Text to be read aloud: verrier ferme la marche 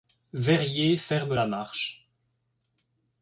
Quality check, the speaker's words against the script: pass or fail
pass